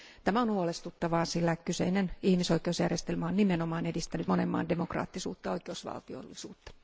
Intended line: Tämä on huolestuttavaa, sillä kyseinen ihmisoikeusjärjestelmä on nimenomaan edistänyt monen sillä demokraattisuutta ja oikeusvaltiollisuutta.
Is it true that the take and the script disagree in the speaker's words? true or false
true